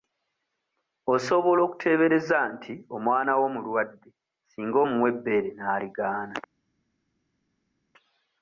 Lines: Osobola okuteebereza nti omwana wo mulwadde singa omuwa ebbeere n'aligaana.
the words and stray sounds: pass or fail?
pass